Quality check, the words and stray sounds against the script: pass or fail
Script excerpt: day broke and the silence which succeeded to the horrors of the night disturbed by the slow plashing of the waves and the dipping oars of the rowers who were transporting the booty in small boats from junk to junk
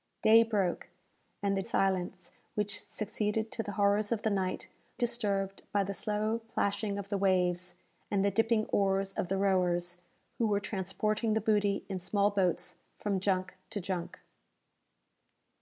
pass